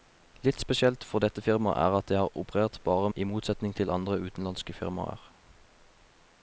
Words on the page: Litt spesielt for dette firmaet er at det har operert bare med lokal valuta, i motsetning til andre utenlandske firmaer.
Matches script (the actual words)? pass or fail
fail